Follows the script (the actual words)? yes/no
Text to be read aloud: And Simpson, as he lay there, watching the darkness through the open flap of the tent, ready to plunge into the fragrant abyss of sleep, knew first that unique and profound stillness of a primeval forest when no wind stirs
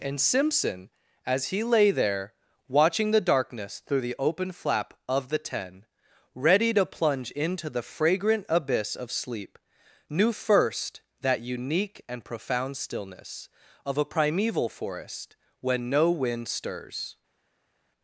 no